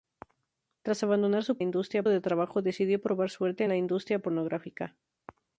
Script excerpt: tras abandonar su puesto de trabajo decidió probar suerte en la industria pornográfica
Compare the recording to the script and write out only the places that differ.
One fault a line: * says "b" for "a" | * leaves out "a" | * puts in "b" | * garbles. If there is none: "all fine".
* says "industria" for "puesto"